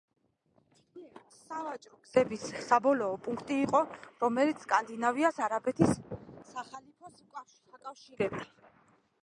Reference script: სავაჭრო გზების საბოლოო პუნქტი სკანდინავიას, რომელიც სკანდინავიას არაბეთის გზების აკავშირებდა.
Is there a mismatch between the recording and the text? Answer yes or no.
yes